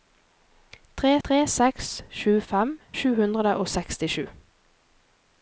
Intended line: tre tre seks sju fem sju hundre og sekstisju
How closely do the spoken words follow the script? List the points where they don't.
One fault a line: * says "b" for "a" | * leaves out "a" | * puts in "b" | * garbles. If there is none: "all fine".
all fine